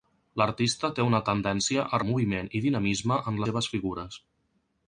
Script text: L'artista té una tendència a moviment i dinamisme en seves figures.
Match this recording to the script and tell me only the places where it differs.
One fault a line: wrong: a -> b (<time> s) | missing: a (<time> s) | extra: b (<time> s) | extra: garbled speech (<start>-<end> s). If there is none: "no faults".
no faults